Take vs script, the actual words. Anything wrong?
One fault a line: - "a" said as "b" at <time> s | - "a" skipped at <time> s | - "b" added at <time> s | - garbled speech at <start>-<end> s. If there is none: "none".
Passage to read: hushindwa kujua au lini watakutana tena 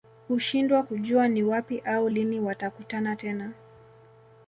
- "ni wapi" added at 1.3 s